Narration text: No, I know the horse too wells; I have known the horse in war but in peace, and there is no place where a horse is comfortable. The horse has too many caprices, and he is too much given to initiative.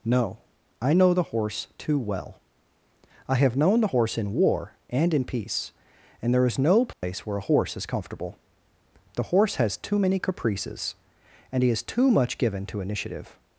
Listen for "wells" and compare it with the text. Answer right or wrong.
wrong